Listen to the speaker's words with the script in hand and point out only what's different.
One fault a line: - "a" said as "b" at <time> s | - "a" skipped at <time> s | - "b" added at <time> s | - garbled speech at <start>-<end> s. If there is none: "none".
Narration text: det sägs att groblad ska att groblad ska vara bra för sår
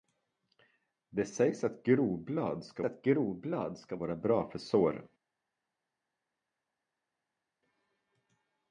none